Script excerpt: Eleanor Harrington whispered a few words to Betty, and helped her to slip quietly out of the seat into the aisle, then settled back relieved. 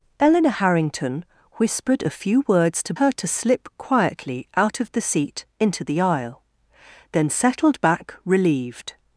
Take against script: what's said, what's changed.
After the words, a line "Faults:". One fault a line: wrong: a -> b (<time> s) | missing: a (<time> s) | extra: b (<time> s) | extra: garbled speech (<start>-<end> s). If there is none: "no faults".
Eleanor Harrington whispered a few words to Her to slip quietly out of the seat into the aisle, then settled back relieved.
Faults:
missing: Betty and helped (2.9 s)